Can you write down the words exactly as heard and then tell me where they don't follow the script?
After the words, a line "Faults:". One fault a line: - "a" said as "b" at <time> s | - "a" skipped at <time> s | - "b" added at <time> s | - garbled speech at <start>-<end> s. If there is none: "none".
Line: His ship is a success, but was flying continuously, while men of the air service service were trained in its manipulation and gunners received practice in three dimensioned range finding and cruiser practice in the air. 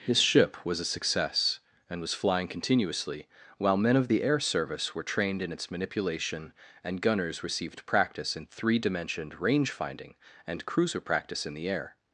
His ship was a success, and was flying continuously, while men of the air service were trained in its manipulation and gunners received practice in three dimensioned range finding and cruiser practice in the air.
Faults:
- "is" said as "was" at 0.7 s
- "but" said as "and" at 1.9 s
- "service" skipped at 5.0 s